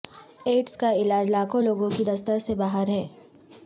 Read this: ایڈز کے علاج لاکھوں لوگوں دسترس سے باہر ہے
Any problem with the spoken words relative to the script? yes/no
yes